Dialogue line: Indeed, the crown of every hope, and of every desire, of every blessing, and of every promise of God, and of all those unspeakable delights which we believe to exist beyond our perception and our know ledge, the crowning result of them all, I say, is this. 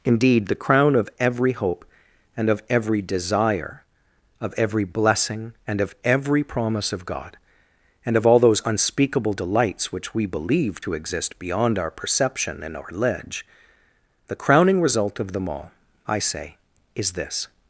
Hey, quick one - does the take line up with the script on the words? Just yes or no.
no